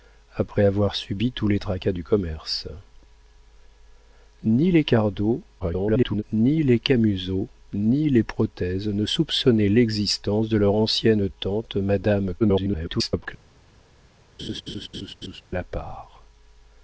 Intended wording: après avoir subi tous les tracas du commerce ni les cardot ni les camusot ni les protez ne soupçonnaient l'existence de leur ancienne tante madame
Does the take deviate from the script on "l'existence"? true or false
false